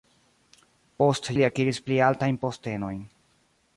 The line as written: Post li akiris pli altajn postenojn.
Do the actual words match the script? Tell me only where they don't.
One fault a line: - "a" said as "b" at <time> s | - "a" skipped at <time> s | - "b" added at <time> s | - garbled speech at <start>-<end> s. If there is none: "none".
none